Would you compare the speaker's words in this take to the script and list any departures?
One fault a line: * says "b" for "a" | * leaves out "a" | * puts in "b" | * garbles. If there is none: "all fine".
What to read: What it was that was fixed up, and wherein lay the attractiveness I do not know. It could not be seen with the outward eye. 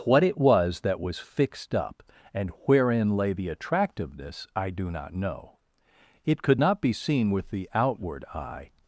all fine